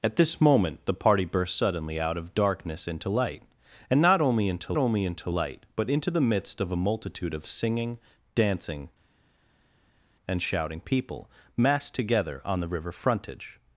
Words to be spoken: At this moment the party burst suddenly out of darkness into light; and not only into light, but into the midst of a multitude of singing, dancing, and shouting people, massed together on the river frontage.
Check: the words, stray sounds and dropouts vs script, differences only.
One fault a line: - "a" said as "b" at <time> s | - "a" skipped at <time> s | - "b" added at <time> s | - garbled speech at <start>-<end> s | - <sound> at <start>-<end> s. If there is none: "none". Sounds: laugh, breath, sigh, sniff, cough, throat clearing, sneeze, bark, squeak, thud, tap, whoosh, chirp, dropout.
- "only into" added at 4.7 s